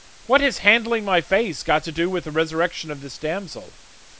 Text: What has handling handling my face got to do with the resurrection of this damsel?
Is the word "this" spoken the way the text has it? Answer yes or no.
yes